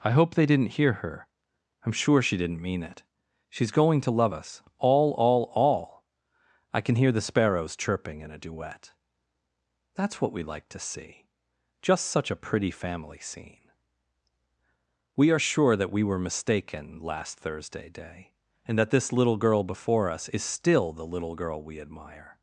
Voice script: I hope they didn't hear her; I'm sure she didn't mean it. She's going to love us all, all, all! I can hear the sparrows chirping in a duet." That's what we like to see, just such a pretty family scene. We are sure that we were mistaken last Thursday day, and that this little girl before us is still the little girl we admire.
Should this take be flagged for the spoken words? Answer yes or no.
no